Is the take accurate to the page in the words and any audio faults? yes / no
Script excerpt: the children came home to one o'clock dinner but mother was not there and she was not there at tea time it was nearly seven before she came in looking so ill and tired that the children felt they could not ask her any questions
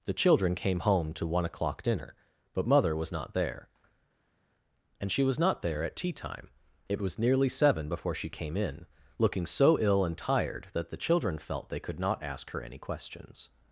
yes